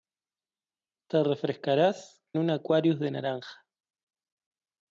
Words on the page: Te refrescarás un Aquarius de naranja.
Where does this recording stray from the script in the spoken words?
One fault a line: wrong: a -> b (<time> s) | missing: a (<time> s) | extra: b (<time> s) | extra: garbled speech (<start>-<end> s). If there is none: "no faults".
no faults